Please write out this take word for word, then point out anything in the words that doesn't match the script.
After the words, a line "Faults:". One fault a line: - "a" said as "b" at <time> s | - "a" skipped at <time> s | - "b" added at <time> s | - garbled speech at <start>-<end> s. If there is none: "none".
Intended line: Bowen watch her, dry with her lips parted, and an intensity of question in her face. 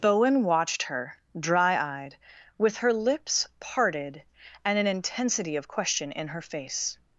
Bowen watched her, dry eyed, with her lips parted, and an intensity of question in her face.
Faults:
- "watch" said as "watched" at 0.4 s
- "eyed" added at 2.0 s